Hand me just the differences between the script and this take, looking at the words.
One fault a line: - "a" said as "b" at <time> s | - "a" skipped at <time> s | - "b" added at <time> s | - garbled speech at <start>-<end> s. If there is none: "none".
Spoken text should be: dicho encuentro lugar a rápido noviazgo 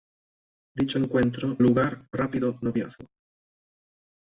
none